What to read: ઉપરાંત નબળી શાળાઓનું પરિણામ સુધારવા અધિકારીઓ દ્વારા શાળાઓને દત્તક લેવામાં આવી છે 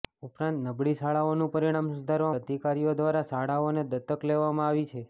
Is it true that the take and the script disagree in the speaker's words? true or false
false